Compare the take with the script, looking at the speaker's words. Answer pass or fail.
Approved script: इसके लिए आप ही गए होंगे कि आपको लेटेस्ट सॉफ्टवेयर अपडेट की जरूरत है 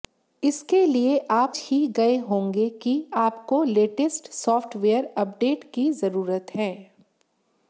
pass